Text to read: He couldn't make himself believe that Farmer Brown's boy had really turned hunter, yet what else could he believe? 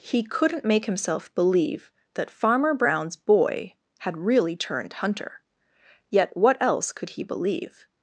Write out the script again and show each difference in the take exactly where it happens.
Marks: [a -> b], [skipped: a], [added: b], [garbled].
He couldn't make himself believe that Farmer Brown's boy had really turned hunter, yet what else could he believe?